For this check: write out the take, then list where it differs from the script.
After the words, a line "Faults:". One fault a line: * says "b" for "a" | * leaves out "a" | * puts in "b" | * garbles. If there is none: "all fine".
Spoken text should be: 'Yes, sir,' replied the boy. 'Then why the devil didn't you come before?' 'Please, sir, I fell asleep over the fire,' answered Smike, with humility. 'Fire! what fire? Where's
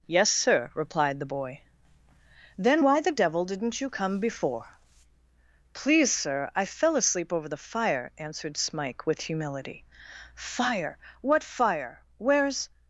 'Yes, sir,' replied the boy. 'Then why the devil didn't you come before?' 'Please, sir, I fell asleep over the fire,' answered Smike, with humility. 'Fire! what fire? Where's
Faults:
all fine